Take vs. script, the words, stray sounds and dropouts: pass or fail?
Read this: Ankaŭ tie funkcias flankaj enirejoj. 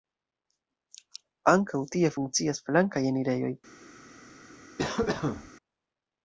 fail